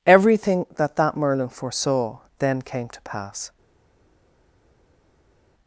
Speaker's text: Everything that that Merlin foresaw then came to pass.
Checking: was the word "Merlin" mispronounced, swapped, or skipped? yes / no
no